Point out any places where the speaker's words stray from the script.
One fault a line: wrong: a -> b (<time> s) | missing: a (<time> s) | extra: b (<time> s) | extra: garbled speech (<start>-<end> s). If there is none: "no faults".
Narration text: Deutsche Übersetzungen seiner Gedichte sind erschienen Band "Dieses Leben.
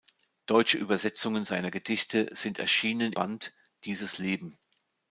no faults